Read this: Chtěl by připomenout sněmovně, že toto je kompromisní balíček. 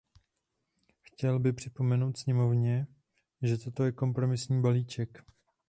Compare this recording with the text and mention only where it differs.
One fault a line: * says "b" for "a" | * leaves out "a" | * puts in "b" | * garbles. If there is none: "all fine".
all fine